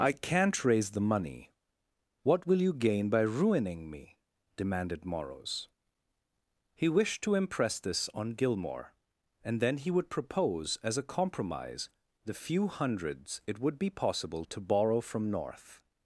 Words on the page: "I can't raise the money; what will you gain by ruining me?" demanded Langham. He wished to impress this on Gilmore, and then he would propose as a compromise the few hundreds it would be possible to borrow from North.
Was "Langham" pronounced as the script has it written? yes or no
no